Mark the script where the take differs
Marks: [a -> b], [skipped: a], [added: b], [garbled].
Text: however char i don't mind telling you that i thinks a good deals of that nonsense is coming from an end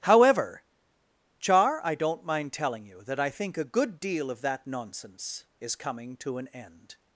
however char i don't mind telling you that i [thinks -> think] a good [deals -> deal] of that nonsense is coming [from -> to] an end